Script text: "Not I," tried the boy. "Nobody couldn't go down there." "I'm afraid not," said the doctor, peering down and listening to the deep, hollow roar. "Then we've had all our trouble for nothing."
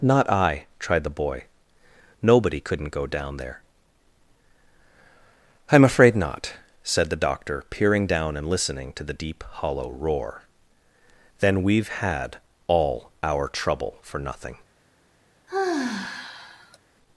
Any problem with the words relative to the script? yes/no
no